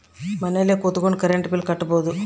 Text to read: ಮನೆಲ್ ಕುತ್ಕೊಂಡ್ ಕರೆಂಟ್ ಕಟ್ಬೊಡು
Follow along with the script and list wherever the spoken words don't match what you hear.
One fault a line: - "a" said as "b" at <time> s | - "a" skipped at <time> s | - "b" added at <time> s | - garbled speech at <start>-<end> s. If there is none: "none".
- "ಬಿಲ್" added at 1.5 s